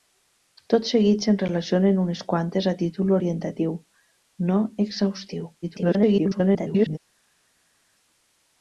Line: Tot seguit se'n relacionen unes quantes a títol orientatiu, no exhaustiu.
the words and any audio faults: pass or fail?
fail